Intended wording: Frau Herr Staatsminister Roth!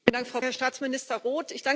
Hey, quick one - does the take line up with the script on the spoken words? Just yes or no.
yes